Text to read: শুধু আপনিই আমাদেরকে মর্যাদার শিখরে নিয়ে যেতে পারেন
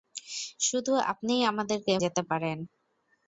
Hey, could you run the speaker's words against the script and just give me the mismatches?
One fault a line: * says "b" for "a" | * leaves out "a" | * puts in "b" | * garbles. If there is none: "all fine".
* leaves out "মর্যাদার শিখরে নিয়ে"